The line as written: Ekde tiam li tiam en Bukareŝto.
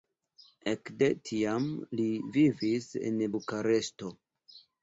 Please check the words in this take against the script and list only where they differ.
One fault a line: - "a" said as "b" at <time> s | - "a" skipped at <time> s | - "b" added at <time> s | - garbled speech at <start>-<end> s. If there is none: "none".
- "tiam" said as "vivis" at 2.4 s